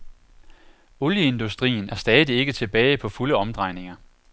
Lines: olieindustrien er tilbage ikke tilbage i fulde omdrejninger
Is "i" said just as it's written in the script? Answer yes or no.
no